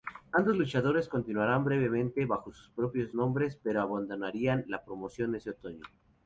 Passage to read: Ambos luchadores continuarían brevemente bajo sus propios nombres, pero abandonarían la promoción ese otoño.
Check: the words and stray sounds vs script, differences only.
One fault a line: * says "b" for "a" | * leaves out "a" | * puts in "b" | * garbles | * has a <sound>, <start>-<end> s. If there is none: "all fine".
all fine